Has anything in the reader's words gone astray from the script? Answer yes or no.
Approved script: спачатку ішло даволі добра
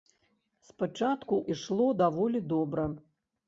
no